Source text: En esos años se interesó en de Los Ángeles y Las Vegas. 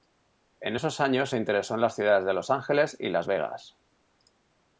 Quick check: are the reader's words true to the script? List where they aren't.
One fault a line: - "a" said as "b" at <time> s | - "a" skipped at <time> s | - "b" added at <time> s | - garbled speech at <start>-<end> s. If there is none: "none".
- "las ciudades" added at 1.8 s